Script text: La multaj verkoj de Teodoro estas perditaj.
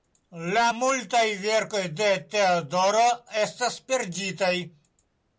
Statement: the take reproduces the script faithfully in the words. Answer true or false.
true